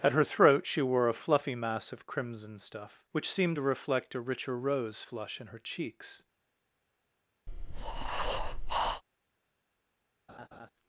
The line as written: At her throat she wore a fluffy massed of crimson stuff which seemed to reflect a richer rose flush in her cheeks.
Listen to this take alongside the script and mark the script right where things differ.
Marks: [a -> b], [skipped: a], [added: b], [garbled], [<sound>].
At her throat she wore a fluffy [massed -> mass] of crimson stuff which seemed to reflect a richer rose flush in her cheeks. [breath] [laugh]